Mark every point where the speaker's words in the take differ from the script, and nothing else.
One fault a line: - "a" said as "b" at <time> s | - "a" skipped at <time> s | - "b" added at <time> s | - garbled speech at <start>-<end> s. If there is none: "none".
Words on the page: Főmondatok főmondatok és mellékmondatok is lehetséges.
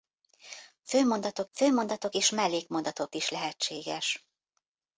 none